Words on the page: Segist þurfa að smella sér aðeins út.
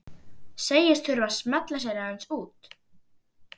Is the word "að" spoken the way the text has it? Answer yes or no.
yes